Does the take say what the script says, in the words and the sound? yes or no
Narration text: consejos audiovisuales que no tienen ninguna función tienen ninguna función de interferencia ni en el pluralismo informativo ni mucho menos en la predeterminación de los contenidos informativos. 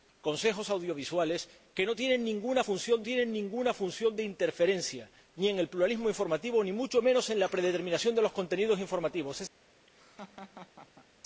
no